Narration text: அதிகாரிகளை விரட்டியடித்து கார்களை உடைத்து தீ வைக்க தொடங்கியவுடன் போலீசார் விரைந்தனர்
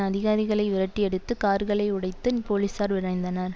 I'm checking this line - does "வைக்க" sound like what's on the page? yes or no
no